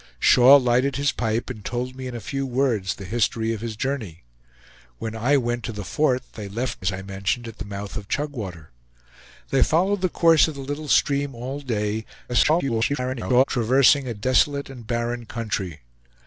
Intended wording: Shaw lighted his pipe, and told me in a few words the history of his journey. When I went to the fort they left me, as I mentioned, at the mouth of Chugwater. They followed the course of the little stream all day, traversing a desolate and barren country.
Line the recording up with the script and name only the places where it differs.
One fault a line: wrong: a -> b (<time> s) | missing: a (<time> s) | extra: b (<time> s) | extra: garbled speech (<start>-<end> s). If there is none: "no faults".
missing: me (6.9 s)
extra: garbled speech (12.3-13.4 s)